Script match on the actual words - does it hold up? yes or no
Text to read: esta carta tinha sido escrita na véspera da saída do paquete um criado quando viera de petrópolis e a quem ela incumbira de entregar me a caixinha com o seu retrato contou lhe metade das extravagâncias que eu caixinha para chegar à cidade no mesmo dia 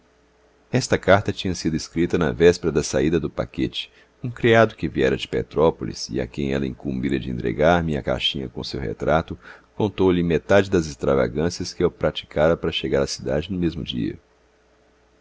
no